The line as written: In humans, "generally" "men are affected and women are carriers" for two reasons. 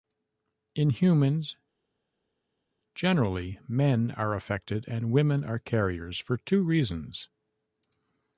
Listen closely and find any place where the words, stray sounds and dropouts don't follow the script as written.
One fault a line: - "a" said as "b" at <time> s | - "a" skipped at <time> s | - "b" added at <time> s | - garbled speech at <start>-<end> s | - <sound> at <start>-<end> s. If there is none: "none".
none